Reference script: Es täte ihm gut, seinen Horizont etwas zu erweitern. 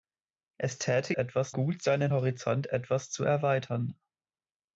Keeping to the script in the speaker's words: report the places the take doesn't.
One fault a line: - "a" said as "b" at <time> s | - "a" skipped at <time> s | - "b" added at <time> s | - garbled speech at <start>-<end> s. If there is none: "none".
- "ihm" said as "etwas" at 1.1 s